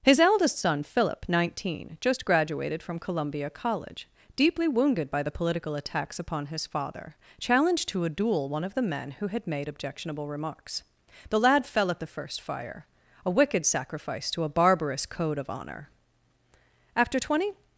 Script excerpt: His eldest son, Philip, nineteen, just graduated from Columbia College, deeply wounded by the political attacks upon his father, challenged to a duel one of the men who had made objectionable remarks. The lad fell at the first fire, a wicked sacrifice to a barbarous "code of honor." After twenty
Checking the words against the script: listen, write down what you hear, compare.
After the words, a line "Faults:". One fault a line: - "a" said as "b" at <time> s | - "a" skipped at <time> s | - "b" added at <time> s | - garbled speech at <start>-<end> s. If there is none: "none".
His eldest son, Philip, nineteen, just graduated from Columbia College, deeply wounded by the political attacks upon his father, challenged to a duel one of the men who had made objectionable remarks. The lad fell at the first fire, a wicked sacrifice to a barbarous "code of honor." After twenty
Faults:
none